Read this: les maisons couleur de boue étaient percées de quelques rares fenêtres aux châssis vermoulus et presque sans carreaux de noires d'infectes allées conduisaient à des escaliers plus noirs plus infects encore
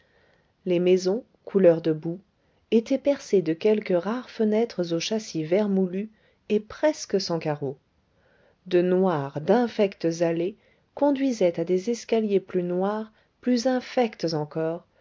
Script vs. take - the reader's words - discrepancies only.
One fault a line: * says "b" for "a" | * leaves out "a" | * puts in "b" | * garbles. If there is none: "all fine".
all fine